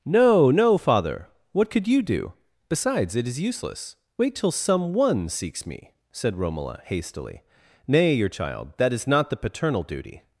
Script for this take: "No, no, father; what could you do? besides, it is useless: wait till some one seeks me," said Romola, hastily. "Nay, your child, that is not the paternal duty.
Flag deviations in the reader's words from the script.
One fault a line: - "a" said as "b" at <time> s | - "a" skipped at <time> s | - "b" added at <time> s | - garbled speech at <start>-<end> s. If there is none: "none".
none